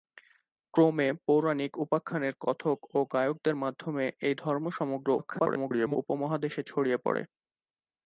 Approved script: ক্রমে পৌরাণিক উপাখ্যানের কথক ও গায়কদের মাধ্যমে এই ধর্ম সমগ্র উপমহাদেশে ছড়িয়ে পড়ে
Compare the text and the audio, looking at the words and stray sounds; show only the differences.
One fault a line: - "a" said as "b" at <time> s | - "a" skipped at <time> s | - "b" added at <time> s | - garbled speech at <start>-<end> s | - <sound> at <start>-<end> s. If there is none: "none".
- garbled speech at 5.2-6.0 s